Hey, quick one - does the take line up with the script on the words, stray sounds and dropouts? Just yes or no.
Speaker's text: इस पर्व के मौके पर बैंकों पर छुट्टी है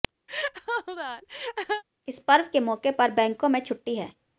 no